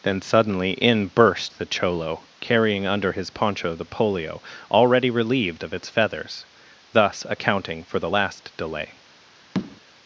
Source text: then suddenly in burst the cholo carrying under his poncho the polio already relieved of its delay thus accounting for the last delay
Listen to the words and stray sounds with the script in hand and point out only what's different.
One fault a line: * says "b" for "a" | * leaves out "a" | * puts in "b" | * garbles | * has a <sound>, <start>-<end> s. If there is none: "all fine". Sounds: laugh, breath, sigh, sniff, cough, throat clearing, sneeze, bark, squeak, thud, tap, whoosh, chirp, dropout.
* says "feathers" for "delay"
* has a tap, 9.5-9.8 s